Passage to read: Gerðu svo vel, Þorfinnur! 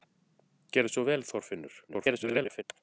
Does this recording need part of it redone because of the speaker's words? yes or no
yes